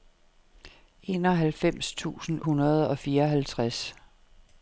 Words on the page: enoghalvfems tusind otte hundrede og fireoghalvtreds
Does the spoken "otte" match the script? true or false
false